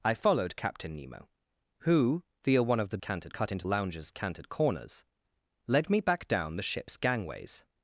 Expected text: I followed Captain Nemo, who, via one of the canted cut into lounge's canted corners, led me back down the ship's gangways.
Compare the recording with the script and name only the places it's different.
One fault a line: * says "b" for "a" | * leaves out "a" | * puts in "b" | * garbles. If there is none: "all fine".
all fine